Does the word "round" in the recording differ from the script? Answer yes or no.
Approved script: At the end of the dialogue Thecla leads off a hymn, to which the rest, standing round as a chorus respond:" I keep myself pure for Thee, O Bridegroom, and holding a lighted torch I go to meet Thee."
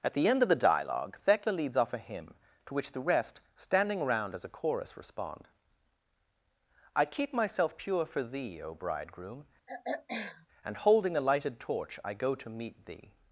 yes